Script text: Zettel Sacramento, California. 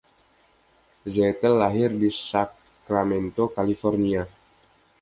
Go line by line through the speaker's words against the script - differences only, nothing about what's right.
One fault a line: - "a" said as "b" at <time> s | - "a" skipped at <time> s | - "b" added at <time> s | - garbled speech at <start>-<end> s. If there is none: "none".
- "lahir di" added at 1.6 s